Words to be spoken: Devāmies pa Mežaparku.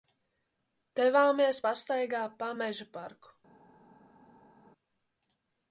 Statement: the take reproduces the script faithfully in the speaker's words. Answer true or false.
false